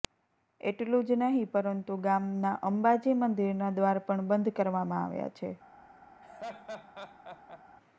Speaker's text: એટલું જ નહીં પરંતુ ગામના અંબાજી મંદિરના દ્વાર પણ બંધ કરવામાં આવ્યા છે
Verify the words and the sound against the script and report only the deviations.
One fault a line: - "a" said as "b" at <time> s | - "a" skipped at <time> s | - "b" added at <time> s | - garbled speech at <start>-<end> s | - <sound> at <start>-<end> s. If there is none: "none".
- laugh at 6.2-7.6 s